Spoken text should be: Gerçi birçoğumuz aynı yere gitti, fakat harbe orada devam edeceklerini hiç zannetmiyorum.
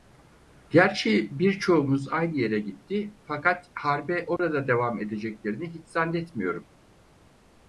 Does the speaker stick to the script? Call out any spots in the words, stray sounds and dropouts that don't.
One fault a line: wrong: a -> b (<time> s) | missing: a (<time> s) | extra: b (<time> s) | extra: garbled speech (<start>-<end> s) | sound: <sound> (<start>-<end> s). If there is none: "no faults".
sound: dropout (4.4-4.4 s)